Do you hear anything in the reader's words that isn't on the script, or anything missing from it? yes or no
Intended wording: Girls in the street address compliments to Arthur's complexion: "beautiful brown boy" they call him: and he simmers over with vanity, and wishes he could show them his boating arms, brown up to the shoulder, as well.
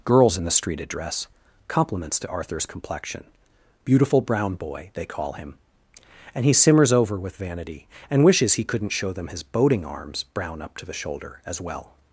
yes